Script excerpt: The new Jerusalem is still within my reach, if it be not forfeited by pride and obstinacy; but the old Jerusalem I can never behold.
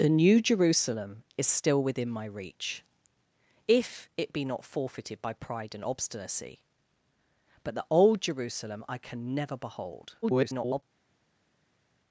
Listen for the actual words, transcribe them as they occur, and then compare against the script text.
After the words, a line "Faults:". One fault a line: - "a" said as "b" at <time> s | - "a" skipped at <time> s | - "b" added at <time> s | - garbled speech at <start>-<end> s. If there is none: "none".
The new Jerusalem is still within my reach, if it be not forfeited by pride and obstinacy; but the old Jerusalem I can never behold. [garbled]
Faults:
- garbled speech at 10.2-10.8 s